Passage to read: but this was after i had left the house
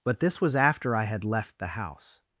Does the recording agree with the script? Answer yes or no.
yes